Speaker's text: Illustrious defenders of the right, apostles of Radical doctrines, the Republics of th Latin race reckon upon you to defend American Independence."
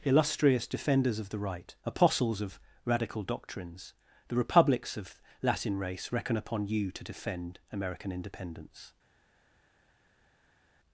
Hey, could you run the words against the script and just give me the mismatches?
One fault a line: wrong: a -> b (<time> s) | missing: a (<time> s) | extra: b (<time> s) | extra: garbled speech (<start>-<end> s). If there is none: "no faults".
missing: th (5.2 s)